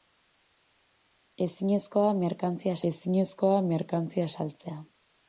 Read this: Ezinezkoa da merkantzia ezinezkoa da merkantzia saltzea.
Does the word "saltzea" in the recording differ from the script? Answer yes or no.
no